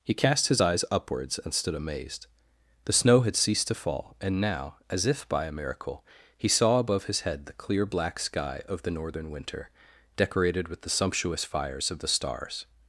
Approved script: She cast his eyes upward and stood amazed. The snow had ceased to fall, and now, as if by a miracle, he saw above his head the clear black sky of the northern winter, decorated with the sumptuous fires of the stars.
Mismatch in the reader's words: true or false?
true